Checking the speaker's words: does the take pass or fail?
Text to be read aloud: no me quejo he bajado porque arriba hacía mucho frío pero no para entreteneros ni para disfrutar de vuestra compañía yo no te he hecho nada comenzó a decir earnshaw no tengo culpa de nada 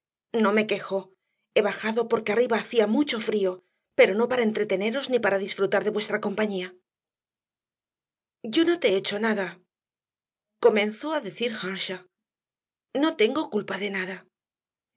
pass